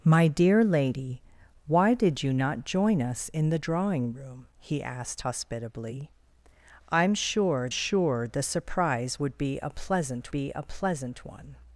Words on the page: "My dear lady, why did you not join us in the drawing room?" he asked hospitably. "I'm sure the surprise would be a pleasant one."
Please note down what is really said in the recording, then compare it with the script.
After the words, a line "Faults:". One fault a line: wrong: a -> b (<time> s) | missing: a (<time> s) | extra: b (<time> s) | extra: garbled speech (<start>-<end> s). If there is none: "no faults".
"My dear lady, why did you not join us in the drawing room?" he asked hospitably. "I'm sure sure the surprise would be a pleasant be a pleasant one."
Faults:
extra: sure (7.7 s)
extra: be a pleasant (10.3 s)